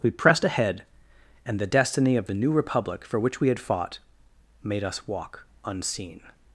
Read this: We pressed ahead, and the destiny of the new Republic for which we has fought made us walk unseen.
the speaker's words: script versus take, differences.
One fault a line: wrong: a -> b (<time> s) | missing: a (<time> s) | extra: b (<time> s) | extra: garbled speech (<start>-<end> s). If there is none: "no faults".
wrong: has -> had (3.5 s)